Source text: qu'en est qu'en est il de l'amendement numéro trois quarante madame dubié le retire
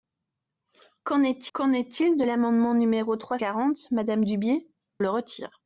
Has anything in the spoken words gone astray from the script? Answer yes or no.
no